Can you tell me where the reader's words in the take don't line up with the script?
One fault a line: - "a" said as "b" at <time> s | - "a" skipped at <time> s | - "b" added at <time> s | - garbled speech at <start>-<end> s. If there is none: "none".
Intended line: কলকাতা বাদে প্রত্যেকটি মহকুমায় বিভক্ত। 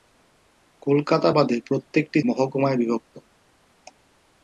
none